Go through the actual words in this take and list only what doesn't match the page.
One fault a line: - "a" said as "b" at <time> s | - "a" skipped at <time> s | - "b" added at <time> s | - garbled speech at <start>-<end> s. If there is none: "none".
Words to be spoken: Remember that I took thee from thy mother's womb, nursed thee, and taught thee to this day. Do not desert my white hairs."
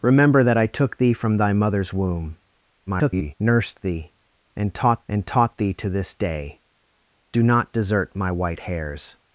- garbled speech at 2.9-3.3 s
- "and taught" added at 5.1 s